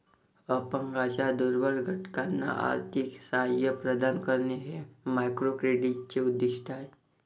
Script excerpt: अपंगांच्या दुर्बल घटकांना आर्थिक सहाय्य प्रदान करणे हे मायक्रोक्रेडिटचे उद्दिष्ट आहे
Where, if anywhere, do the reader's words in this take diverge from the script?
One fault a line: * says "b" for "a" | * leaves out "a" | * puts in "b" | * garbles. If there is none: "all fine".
all fine